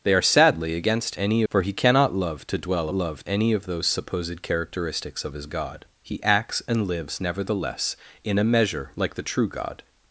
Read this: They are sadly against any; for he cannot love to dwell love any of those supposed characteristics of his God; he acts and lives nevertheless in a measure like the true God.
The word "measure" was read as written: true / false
true